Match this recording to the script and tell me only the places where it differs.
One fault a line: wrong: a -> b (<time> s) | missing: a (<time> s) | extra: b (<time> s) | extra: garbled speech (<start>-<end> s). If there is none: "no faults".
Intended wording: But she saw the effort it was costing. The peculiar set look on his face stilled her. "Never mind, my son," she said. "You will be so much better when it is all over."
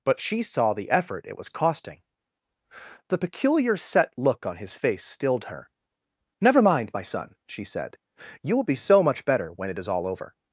no faults